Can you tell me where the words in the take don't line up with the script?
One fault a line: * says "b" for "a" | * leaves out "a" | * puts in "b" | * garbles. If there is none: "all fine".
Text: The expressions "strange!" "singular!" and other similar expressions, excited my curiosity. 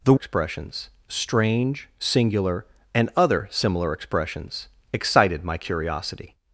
all fine